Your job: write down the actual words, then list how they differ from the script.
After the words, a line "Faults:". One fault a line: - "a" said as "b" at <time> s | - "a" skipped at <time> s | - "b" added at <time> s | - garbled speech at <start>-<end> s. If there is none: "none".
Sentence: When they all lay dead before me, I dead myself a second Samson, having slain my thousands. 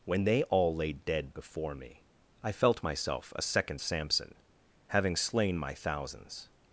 When they all lay dead before me, I felt myself a second Samson, having slain my thousands.
Faults:
- "dead" said as "felt" at 2.5 s